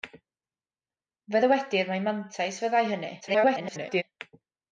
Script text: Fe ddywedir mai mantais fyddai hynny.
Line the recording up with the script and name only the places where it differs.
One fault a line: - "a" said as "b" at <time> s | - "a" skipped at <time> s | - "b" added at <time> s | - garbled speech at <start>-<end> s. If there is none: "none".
- garbled speech at 3.2-4.0 s